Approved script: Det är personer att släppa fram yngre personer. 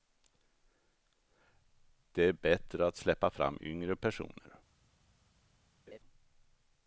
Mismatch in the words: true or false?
true